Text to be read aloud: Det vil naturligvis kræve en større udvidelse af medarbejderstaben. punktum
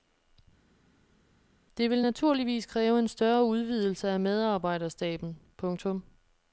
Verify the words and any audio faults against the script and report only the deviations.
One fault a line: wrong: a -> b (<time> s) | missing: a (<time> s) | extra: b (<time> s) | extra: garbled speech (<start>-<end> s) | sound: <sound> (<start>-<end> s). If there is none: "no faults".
no faults